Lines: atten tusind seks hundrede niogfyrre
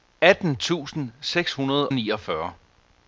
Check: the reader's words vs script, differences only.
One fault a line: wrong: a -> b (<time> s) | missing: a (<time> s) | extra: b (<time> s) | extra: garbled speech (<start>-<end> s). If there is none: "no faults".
no faults